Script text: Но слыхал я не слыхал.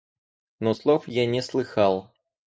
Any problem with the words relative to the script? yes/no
yes